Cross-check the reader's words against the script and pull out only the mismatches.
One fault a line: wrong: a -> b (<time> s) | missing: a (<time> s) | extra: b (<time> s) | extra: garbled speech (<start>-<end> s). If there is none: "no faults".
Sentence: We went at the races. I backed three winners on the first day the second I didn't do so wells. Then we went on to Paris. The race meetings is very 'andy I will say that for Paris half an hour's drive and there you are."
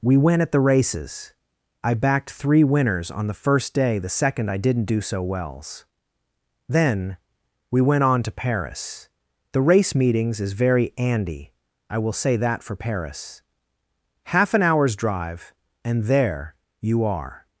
no faults